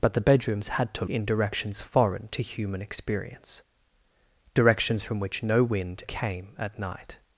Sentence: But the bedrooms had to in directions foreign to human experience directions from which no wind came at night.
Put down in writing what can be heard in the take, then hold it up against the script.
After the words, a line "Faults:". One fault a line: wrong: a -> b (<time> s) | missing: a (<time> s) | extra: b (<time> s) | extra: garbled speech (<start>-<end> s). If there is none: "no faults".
But the bedrooms had to in directions foreign to human experience directions from which no wind came at night.
Faults:
no faults